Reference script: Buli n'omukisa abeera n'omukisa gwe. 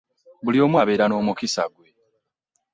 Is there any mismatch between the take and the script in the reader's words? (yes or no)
yes